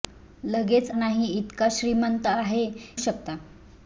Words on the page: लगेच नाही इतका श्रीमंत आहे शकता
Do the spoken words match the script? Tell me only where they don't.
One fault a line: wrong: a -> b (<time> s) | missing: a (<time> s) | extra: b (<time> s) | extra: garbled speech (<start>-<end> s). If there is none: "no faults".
no faults